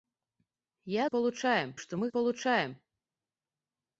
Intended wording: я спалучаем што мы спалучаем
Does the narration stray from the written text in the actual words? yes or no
no